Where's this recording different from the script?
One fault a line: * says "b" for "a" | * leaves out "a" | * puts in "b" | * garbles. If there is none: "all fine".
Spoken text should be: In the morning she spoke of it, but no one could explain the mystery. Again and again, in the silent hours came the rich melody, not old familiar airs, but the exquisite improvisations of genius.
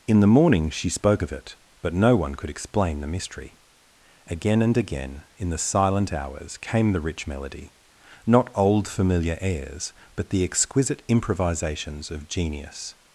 all fine